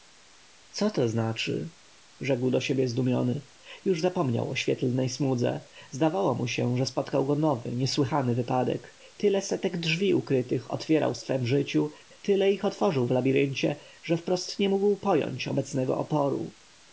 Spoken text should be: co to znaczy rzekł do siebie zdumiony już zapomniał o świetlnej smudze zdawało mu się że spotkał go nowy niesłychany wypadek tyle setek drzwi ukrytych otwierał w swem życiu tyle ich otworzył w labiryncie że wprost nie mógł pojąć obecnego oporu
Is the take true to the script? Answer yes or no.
yes